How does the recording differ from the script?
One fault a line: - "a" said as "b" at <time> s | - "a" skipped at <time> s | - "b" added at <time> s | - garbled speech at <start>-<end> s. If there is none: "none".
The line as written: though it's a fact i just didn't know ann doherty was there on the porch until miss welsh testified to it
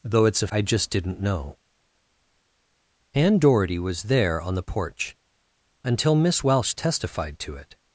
- "fact" skipped at 0.5 s